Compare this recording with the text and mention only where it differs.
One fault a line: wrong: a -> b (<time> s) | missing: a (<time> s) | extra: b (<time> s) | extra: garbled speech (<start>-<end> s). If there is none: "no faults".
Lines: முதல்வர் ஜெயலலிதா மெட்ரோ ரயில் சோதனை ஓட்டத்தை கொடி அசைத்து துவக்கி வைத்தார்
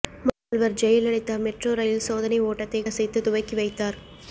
missing: கொடி (2.8 s)